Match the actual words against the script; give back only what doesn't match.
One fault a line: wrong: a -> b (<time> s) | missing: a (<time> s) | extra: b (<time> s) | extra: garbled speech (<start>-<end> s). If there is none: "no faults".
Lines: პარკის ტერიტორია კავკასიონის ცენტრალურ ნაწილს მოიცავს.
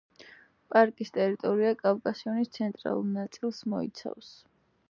no faults